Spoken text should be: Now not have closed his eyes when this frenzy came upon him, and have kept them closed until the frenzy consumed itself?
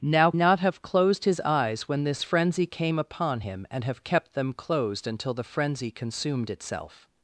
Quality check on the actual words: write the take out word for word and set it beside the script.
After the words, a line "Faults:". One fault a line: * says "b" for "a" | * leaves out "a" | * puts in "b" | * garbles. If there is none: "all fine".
Now not have closed his eyes when this frenzy came upon him, and have kept them closed until the frenzy consumed itself?
Faults:
all fine